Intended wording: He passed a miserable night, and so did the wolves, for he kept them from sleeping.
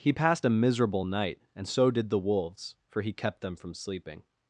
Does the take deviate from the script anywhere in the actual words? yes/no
no